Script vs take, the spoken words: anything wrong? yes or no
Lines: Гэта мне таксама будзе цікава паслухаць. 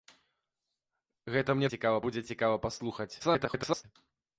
yes